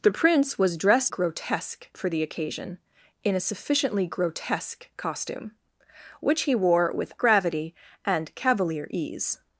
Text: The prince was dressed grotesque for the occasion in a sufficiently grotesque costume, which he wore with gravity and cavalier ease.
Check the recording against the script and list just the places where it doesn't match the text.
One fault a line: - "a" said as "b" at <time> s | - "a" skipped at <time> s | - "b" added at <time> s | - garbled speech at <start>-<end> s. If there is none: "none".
none